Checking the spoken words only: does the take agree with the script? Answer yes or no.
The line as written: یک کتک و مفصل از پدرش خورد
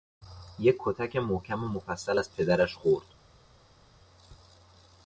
no